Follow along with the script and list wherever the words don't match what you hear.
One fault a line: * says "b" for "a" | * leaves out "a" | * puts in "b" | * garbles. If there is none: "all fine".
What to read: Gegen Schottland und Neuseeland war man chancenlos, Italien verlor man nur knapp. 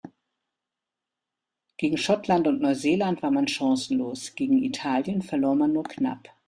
* puts in "gegen"